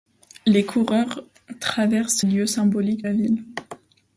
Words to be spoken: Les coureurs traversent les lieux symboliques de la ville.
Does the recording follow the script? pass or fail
fail